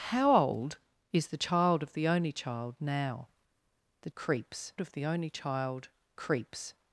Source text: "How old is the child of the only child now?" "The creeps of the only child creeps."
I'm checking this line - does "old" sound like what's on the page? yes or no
yes